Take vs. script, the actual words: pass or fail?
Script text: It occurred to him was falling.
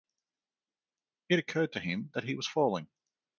fail